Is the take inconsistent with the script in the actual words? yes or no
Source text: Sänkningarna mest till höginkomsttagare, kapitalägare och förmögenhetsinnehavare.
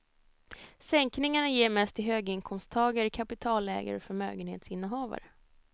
yes